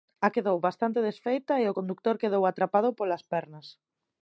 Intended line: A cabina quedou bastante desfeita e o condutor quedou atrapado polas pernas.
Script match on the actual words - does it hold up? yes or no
no